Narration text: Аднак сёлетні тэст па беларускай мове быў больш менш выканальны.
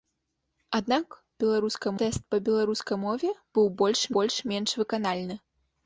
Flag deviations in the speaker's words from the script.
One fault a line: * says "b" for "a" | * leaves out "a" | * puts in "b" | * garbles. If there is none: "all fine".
* says "беларускай" for "сёлетні"
* puts in "больш"